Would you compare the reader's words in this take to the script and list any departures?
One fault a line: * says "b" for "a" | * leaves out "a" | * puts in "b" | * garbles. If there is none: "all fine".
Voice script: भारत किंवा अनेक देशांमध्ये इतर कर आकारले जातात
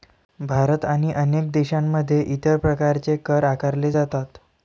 * says "आणि" for "किंवा"
* puts in "प्रकारचे"